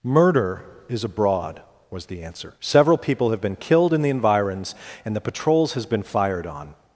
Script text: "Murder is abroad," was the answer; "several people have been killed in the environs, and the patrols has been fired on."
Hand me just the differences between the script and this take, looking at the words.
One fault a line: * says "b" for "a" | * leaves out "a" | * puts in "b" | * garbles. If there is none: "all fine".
all fine